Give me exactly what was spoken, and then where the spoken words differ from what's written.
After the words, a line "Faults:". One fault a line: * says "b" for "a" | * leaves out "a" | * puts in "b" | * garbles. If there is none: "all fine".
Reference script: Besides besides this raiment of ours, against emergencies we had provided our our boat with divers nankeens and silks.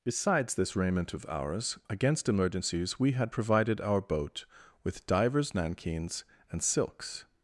Besides this raiment of ours, against emergencies we had provided our boat with divers nankeens and silks.
Faults:
* leaves out "besides"
* leaves out "our"